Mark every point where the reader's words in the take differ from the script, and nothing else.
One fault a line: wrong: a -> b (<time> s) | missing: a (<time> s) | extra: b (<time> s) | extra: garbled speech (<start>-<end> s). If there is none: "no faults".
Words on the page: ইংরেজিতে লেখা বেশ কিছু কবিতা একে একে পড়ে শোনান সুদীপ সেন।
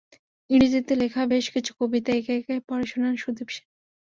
no faults